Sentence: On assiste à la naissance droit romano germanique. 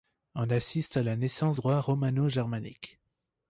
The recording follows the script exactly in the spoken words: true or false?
true